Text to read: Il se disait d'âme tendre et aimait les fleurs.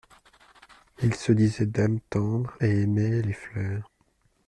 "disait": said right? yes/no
yes